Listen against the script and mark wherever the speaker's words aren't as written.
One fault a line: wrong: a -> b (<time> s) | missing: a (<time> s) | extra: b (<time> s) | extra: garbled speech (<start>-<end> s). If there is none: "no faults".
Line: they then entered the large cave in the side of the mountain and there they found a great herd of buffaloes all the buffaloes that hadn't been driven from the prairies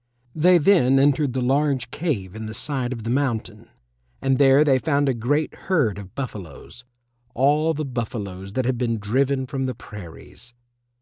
wrong: hadn't -> had (8.6 s)